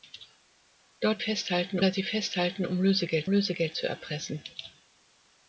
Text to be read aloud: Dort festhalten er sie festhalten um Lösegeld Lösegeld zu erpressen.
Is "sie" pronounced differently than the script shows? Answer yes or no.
no